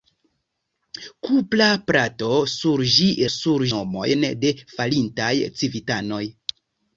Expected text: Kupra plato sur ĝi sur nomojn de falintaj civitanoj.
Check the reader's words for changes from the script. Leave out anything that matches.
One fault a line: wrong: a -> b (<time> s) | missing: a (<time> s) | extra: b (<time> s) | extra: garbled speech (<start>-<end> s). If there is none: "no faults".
no faults